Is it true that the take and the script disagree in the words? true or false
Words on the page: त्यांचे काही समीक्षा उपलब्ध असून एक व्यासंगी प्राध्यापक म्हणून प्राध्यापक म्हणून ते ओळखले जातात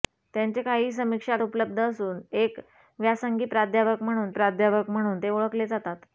false